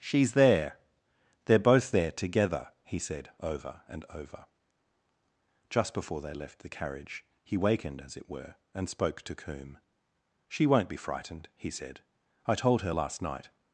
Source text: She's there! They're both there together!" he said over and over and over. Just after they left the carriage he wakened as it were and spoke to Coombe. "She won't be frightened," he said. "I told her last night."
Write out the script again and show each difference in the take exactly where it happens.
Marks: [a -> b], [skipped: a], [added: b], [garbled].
She's there! They're both there together!" he said over and over [skipped: and over.] Just [after -> before] they left the carriage he wakened as it were and spoke to Coombe. "She won't be frightened," he said. "I told her last night."